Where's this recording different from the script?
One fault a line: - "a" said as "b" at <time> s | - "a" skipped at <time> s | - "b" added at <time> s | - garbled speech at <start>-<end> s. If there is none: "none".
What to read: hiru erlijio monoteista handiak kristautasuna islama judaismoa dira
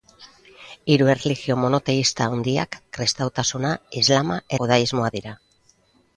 none